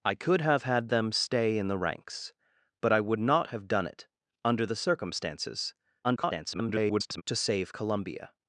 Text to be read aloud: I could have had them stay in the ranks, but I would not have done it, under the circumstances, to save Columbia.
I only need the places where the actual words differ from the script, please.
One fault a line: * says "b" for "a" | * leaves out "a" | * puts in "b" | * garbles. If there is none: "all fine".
* garbles